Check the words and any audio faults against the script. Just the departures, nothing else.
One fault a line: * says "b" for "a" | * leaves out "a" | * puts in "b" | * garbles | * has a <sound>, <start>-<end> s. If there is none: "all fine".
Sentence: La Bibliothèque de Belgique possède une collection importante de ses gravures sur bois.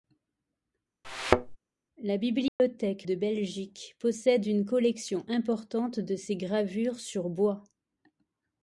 * has a thud, 1.0-1.6 s
* has a dropout, 2.5-2.6 s